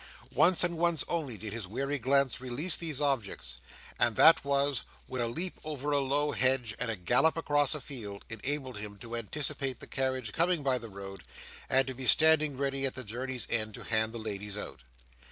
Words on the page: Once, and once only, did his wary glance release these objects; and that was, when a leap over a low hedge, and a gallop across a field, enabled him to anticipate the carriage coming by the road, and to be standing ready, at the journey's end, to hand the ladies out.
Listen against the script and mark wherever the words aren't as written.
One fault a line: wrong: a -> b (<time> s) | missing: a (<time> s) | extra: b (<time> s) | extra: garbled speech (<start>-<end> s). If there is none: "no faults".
no faults